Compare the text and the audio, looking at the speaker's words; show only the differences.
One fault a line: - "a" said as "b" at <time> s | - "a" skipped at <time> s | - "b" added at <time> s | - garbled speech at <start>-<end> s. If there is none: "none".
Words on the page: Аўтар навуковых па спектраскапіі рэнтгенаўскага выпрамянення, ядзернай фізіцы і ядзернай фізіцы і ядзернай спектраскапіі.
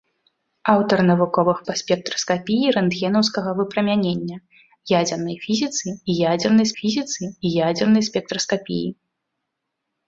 none